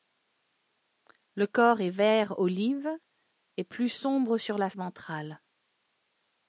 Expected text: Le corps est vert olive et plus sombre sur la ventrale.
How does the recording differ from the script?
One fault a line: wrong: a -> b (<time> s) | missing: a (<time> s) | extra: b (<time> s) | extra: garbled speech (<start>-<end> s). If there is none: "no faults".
no faults